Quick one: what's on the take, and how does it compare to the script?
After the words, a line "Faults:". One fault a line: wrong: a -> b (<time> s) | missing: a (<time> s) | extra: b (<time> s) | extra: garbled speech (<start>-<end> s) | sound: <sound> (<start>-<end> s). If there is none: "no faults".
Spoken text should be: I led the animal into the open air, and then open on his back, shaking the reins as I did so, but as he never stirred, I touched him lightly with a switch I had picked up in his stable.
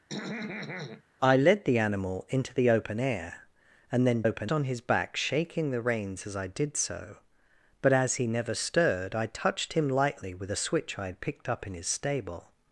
I led the animal into the open air, and then open on his back, shaking the reins as I did so, but as he never stirred, I touched him lightly with a switch I had picked up in his stable.
Faults:
sound: throat clearing (0.1-1.0 s)